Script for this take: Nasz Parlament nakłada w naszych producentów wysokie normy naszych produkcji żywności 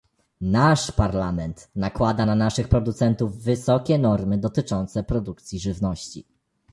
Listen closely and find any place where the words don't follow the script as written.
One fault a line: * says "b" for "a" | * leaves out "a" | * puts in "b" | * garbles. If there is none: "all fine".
* says "na" for "w"
* says "dotyczące" for "naszych"